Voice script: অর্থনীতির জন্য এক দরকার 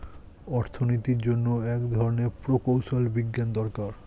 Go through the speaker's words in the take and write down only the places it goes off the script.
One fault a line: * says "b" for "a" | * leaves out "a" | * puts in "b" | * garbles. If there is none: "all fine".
* puts in "ধরনের প্রকৌশল বিজ্ঞান"